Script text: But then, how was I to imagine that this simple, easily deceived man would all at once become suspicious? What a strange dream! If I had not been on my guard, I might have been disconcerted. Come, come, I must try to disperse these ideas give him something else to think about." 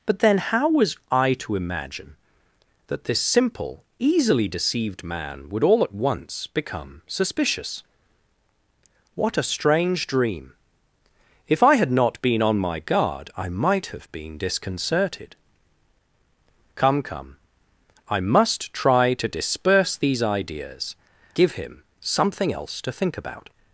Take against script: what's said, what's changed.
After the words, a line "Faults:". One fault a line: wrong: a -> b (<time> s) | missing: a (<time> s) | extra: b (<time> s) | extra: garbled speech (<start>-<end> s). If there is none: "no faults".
But then, how was I to imagine that this simple, easily deceived man would all at once become suspicious? What a strange dream! If I had not been on my guard, I might have been disconcerted. Come, come, I must try to disperse these ideas give him something else to think about."
Faults:
no faults